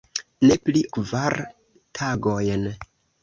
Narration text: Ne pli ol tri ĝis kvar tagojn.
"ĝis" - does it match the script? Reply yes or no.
no